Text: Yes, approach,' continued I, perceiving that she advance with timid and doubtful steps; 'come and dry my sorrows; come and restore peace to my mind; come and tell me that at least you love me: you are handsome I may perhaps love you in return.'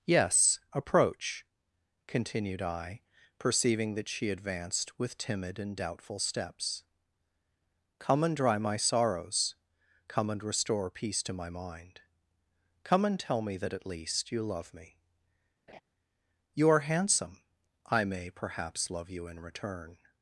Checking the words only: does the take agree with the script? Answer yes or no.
no